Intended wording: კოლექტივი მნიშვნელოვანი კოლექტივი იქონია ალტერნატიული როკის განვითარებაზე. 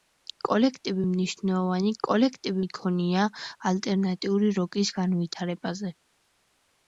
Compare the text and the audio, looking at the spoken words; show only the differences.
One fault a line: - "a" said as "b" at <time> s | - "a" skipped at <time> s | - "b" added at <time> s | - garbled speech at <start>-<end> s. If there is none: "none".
none